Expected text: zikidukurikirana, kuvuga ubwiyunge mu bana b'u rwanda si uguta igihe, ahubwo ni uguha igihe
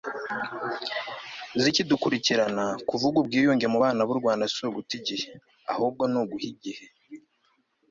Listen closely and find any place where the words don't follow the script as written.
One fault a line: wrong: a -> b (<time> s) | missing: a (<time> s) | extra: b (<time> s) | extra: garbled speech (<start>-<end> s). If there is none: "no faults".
no faults